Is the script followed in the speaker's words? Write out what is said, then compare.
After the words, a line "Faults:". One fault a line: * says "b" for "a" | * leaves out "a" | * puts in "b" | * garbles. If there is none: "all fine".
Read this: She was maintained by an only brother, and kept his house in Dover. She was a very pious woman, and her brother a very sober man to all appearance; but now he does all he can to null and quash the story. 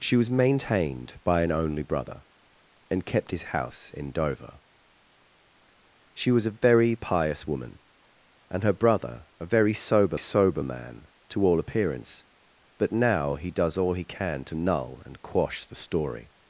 She was maintained by an only brother, and kept his house in Dover. She was a very pious woman, and her brother a very sober sober man to all appearance; but now he does all he can to null and quash the story.
Faults:
* puts in "sober"